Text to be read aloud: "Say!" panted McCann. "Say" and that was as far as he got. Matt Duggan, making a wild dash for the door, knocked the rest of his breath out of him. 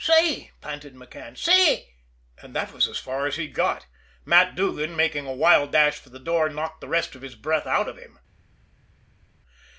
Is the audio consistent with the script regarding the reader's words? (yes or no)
yes